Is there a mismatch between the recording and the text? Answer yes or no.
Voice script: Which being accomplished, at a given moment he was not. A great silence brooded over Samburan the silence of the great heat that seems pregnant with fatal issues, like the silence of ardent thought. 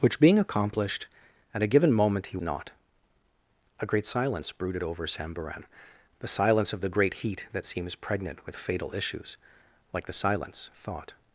yes